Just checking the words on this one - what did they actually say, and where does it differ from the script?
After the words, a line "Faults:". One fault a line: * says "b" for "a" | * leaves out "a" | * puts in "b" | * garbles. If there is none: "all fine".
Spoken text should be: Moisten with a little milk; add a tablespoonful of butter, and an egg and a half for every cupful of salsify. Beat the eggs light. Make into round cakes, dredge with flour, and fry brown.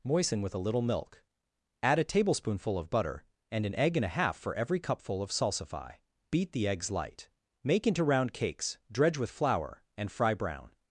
Moisten with a little milk; add a tablespoonful of butter, and an egg and a half for every cupful of salsify. Beat the eggs light. Make into round cakes, dredge with flour, and fry brown.
Faults:
all fine